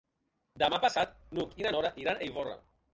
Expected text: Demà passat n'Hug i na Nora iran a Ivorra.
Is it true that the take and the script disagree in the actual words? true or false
false